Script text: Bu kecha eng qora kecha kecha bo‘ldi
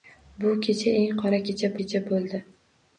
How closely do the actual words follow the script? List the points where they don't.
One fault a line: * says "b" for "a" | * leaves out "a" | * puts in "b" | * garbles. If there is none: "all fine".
all fine